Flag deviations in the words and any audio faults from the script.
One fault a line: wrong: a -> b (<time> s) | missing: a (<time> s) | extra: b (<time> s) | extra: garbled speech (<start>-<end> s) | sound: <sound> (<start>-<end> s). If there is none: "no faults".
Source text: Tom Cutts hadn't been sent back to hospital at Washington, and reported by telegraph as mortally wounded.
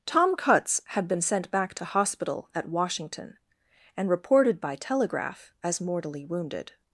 wrong: hadn't -> had (0.9 s)